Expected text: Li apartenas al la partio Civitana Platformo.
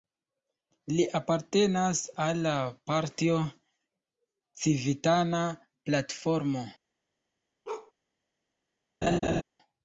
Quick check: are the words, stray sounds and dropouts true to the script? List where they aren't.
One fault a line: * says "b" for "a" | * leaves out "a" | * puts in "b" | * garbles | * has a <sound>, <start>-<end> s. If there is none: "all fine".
* has a bark, 7.6-7.9 s
* has a laugh, 9.0-9.4 s